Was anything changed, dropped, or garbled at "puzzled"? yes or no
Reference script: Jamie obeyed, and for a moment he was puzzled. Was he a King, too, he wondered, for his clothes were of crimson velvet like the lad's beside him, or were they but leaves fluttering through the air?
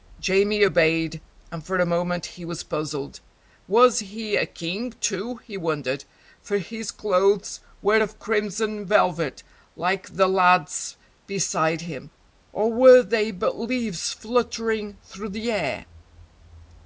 no